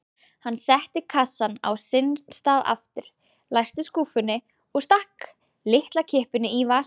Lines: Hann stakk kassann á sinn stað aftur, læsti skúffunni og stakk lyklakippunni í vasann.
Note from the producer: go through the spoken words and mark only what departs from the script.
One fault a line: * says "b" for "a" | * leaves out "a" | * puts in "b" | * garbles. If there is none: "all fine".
* says "setti" for "stakk"